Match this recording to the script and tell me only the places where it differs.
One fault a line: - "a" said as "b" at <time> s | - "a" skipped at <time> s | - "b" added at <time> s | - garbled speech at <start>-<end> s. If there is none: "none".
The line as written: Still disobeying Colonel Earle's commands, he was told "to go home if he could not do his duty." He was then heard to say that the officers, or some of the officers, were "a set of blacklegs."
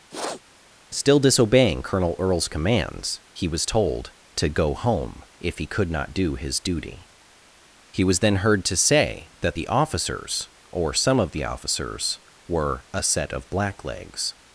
none